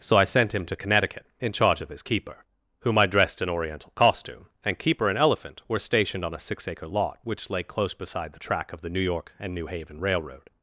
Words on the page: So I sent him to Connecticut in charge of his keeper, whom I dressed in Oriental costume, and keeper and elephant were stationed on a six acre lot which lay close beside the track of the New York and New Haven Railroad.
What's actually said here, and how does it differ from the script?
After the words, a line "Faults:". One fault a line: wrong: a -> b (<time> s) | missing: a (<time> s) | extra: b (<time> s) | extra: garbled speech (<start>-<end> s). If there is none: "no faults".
So I sent him to Connecticut in charge of his keeper, whom I dressed in Oriental costume, and keeper and elephant were stationed on a six acre lot which lay close beside the track of the New York and New Haven Railroad.
Faults:
no faults